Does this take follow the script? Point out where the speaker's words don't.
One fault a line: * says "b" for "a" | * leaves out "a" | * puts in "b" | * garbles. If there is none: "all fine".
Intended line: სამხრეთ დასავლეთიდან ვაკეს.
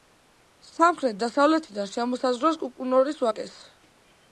* puts in "შემოსაზღვრავს კუკუნორის"